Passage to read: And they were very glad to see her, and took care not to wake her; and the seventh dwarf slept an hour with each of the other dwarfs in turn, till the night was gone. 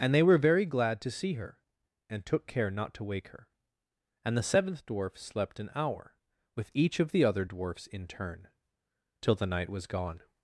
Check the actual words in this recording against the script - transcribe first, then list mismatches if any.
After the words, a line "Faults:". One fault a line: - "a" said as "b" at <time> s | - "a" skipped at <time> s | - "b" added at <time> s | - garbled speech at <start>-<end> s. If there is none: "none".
And they were very glad to see her, and took care not to wake her; and the seventh dwarf slept an hour with each of the other dwarfs in turn, till the night was gone.
Faults:
none